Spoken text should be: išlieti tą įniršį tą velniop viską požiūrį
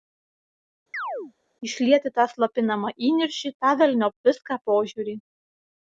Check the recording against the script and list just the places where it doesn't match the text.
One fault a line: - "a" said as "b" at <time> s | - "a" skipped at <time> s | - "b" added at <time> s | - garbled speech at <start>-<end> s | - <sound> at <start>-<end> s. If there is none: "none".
- chirp at 0.9-1.3 s
- "slopinamą" added at 2.3 s